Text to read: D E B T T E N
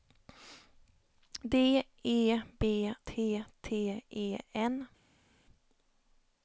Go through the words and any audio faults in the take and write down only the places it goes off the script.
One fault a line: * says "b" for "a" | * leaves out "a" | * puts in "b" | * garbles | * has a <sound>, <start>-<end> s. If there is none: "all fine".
all fine